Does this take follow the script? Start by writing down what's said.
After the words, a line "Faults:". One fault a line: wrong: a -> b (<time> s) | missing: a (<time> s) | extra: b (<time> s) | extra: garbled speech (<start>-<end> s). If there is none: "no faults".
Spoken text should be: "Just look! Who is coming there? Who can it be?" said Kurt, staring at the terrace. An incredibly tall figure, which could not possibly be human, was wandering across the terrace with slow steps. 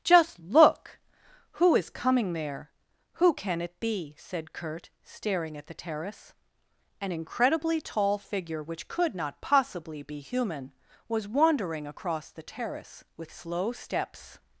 "Just look! Who is coming there? Who can it be?" said Kurt, staring at the terrace. An incredibly tall figure, which could not possibly be human, was wandering across the terrace with slow steps.
Faults:
no faults